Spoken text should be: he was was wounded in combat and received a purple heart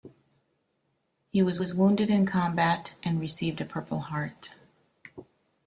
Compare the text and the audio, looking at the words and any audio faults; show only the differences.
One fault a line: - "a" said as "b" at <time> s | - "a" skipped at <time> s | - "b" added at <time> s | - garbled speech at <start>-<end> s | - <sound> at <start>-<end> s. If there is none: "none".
none